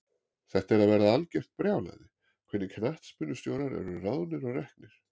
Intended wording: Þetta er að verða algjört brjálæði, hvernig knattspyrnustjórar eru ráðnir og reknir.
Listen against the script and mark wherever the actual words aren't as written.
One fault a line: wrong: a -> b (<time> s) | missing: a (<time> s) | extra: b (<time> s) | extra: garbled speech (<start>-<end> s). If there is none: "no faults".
no faults